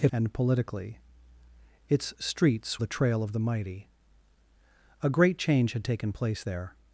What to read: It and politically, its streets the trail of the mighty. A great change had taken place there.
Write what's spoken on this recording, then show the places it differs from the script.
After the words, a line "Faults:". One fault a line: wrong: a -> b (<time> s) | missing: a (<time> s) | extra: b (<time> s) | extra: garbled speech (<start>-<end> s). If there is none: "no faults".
It and politically, its streets the trail of the mighty. A great change had taken place there.
Faults:
no faults